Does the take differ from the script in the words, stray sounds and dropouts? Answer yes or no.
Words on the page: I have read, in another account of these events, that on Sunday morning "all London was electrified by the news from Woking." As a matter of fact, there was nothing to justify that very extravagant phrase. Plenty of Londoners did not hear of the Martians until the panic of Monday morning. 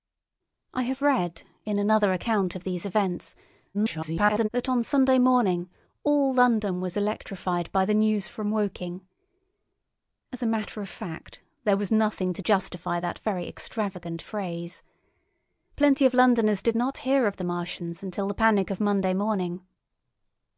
yes